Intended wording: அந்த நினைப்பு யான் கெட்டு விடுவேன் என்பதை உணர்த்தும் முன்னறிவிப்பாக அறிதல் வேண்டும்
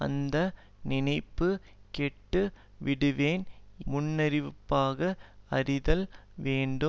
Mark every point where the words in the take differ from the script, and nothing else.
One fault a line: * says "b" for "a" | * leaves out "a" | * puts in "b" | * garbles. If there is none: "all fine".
* leaves out "யான்"
* leaves out "என்பதை உணர்த்தும்"